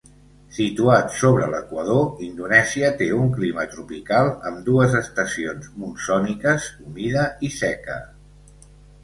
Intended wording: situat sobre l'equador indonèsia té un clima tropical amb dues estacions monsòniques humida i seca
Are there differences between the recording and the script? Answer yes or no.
no